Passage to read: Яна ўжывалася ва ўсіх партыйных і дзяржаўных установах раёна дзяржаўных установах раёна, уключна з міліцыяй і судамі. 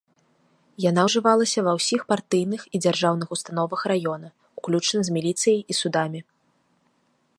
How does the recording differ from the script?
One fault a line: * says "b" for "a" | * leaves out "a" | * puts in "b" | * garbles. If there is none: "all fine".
* leaves out "дзяржаўных установах раёна"